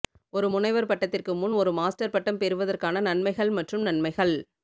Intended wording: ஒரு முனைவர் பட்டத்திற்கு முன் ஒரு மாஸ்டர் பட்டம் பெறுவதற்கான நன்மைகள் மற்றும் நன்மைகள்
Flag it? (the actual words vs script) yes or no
no